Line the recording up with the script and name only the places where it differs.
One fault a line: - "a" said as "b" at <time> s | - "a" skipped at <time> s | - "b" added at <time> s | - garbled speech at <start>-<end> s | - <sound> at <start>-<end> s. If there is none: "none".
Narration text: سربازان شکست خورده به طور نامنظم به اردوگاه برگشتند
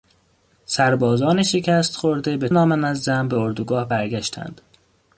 - "طور" skipped at 2.5 s